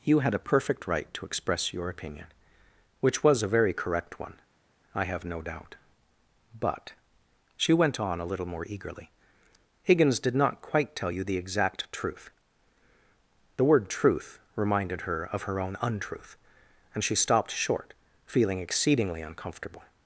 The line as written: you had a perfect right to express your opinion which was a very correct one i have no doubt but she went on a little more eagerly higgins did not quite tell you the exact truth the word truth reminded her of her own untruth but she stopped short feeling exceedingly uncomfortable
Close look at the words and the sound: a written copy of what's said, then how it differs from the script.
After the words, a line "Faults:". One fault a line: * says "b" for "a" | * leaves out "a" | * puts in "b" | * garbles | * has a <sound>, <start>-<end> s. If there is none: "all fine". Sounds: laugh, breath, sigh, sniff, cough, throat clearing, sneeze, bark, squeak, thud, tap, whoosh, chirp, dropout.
you had a perfect right to express your opinion which was a very correct one i have no doubt but she went on a little more eagerly higgins did not quite tell you the exact truth the word truth reminded her of her own untruth and she stopped short feeling exceedingly uncomfortable
Faults:
* says "and" for "but"